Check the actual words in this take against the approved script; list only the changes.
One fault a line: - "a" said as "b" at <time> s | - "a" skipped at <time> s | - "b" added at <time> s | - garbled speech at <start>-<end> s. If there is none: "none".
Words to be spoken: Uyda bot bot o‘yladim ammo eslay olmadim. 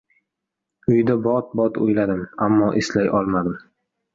none